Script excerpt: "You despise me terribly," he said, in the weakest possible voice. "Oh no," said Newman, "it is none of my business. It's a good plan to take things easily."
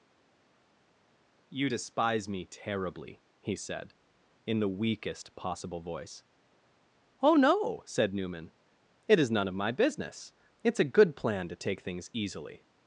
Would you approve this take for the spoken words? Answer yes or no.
yes